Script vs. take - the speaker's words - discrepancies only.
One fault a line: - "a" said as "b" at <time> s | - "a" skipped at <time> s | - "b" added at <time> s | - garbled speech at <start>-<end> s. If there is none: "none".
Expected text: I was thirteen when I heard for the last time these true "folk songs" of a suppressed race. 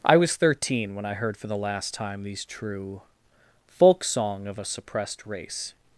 - "songs" said as "song" at 4.0 s